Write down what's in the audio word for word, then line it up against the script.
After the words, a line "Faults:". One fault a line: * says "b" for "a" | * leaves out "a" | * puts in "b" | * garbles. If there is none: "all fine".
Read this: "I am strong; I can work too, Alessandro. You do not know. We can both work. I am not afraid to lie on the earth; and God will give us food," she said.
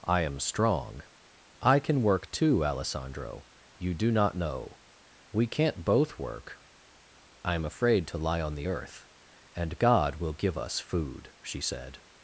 "I am strong; I can work too, Alessandro. You do not know. We can't both work. I am afraid to lie on the earth; and God will give us food," she said.
Faults:
* says "can't" for "can"
* leaves out "not"